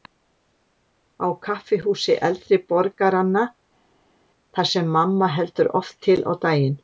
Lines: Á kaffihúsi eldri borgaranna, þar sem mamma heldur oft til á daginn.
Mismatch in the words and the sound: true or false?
false